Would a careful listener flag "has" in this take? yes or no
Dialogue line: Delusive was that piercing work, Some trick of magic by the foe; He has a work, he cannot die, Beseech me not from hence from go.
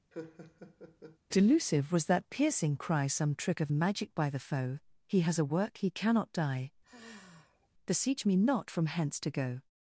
no